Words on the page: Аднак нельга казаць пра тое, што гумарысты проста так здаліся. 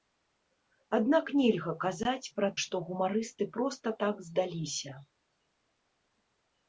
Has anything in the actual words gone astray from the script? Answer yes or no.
yes